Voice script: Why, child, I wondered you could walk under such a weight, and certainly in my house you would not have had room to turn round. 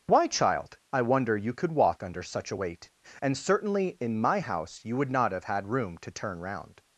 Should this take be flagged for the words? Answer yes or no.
yes